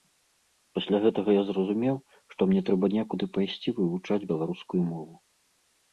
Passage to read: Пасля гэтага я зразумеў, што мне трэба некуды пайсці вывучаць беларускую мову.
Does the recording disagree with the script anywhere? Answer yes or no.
no